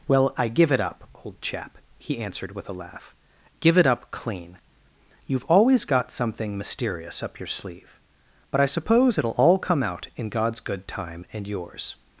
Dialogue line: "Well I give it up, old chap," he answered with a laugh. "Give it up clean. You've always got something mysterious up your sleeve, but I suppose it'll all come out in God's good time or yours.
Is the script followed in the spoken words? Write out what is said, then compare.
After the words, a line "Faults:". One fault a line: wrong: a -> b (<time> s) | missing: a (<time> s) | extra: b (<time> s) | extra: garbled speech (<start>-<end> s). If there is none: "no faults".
"Well I give it up, old chap," he answered with a laugh. "Give it up clean. You've always got something mysterious up your sleeve, but I suppose it'll all come out in God's good time and yours.
Faults:
wrong: or -> and (11.3 s)